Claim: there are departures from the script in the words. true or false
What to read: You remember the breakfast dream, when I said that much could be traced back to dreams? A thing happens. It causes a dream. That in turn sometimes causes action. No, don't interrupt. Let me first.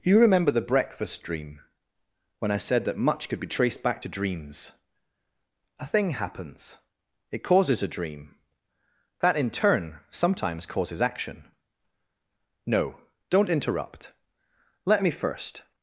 false